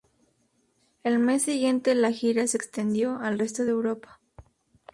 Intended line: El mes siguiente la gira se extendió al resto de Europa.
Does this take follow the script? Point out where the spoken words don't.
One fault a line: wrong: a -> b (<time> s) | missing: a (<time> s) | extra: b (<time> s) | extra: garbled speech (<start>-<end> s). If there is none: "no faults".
no faults